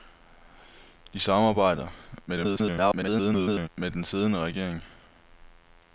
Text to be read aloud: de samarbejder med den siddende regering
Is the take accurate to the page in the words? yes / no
no